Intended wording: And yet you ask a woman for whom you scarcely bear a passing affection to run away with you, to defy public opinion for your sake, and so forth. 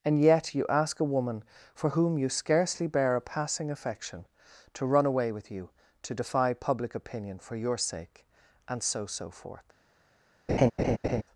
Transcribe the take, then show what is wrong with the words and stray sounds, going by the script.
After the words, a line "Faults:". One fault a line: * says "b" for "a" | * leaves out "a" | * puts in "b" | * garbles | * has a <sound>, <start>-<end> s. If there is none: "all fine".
And yet you ask a woman for whom you scarcely bear a passing affection to run away with you, to defy public opinion for your sake, and so so forth.
Faults:
* puts in "so"
* has a laugh, 10.5-11.2 s